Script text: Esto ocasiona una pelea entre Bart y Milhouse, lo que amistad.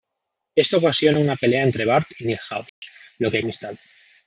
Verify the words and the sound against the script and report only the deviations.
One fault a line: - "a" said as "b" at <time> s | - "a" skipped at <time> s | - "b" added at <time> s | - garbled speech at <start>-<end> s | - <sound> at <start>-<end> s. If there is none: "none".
- dropout at 2.7-2.8 s